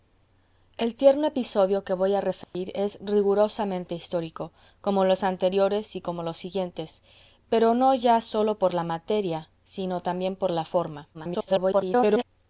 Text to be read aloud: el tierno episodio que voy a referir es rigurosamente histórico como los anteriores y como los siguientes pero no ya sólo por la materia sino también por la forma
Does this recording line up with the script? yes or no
no